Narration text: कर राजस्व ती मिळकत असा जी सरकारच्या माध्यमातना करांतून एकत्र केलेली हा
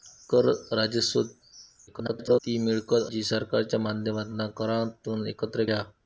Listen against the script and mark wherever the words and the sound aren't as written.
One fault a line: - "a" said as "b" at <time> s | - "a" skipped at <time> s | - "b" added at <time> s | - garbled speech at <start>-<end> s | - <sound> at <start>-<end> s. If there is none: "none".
- garbled speech at 1.9-2.4 s
- "असा" skipped at 3.1 s
- "केलेली" skipped at 5.6 s